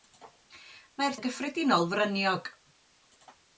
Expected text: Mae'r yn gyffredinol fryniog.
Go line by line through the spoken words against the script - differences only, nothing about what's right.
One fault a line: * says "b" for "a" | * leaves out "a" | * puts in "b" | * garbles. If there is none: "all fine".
all fine